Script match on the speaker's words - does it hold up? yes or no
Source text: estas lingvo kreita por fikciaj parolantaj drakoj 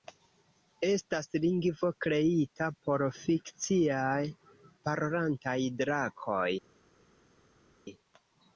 yes